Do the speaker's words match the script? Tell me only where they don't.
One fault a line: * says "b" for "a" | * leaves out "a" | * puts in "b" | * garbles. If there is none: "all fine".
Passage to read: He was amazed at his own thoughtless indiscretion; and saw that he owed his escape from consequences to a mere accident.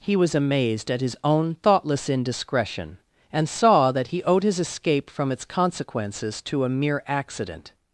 * puts in "its"